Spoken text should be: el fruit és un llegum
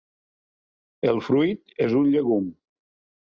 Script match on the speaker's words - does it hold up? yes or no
yes